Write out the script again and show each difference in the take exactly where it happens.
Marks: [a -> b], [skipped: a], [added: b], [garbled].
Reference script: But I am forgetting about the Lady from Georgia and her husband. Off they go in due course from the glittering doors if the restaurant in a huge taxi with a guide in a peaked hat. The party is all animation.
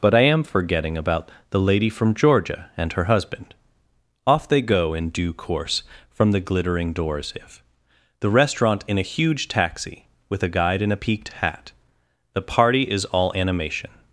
But I am forgetting about the Lady from Georgia and her husband. Off they go in due course from the glittering doors if the restaurant in a huge taxi with a guide in a peaked hat. The party is all animation.